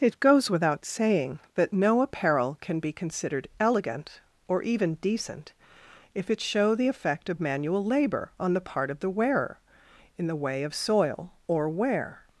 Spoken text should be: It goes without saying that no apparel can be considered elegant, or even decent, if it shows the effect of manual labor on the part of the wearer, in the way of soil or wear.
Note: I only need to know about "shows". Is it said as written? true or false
false